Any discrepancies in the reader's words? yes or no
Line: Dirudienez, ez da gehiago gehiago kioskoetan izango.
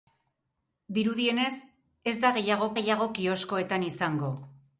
no